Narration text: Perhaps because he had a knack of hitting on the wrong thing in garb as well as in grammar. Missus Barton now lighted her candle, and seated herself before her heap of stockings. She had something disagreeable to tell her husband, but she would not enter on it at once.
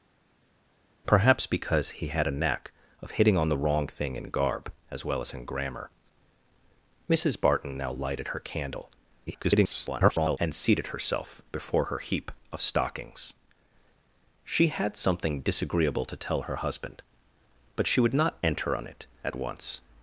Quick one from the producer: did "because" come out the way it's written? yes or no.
yes